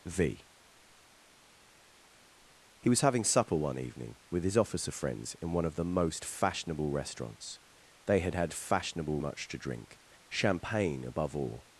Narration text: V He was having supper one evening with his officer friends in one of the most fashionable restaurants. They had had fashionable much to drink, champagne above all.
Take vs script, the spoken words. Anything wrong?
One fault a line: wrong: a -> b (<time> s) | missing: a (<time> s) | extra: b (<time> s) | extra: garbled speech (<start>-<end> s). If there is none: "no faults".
no faults